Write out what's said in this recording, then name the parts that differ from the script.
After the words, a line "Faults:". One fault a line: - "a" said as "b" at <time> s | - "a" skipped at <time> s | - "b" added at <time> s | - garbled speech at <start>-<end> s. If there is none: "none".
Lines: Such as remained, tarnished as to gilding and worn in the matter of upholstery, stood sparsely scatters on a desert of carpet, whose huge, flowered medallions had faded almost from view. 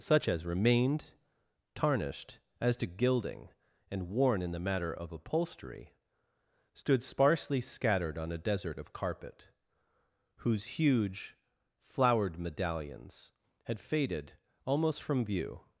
Such as remained, tarnished as to gilding and worn in the matter of upholstery, stood sparsely scattered on a desert of carpet, whose huge, flowered medallions had faded almost from view.
Faults:
- "scatters" said as "scattered" at 7.6 s